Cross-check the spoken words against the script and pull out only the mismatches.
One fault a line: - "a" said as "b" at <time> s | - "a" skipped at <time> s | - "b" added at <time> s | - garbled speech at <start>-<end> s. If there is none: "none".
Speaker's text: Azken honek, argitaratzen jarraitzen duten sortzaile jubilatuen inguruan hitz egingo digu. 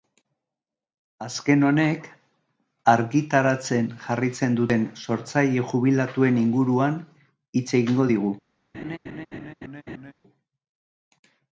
none